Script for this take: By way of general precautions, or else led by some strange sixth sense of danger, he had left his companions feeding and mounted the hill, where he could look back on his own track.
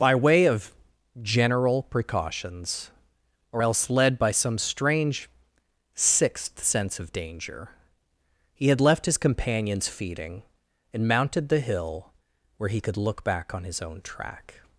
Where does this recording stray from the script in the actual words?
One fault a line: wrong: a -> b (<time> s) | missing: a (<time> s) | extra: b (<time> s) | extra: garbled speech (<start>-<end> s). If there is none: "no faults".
no faults